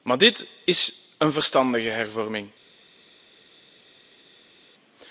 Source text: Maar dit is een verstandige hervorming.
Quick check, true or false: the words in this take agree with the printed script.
true